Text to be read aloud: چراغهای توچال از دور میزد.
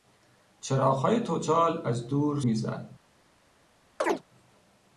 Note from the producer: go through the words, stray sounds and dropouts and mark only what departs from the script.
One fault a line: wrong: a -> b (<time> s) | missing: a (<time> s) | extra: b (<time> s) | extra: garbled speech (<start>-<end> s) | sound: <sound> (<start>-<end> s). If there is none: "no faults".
sound: chirp (4.0-4.2 s)